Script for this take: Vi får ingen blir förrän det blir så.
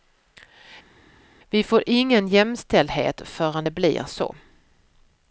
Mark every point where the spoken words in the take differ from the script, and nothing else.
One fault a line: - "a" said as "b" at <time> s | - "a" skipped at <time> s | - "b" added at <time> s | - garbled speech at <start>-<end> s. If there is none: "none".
- "blir" said as "jämställdhet" at 2.3 s